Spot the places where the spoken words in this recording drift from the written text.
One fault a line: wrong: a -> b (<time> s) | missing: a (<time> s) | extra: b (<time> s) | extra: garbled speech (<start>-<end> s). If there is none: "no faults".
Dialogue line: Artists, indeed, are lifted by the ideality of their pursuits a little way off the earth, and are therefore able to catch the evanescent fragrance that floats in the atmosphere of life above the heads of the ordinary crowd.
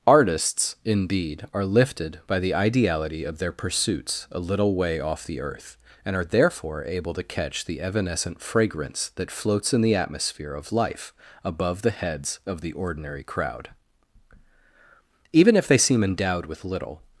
extra: Even if they seem endowed with little (15.3 s)